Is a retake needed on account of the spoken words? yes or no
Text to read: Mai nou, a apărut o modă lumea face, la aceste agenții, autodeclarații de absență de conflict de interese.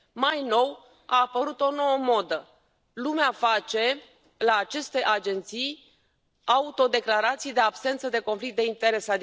yes